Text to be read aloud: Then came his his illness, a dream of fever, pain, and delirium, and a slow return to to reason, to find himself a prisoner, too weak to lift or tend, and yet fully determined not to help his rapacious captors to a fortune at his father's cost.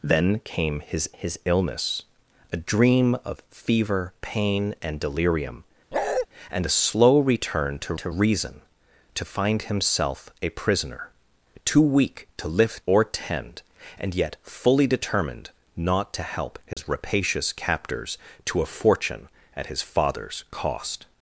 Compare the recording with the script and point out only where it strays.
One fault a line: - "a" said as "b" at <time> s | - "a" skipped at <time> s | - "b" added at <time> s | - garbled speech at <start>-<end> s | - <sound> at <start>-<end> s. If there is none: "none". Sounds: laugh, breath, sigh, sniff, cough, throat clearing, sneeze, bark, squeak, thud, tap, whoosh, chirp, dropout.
- bark at 5.9-6.3 s
- dropout at 16.7-16.8 s